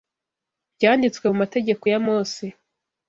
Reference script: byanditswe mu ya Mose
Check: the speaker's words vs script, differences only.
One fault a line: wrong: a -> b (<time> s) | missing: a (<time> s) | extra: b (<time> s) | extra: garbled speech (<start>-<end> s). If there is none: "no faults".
extra: mategeko (1.4 s)